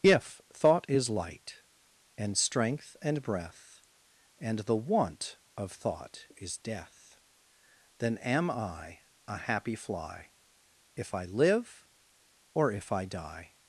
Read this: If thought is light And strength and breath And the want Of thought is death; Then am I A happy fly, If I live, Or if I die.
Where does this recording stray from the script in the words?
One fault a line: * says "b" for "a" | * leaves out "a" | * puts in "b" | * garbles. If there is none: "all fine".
all fine